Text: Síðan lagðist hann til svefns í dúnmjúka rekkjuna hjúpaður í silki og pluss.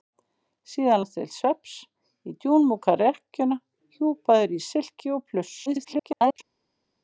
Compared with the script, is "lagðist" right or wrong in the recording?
wrong